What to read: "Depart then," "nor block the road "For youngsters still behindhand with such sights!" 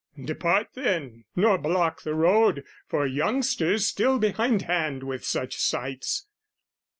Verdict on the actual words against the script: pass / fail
pass